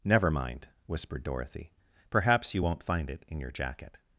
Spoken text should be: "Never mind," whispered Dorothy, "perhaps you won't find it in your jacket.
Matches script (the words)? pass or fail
pass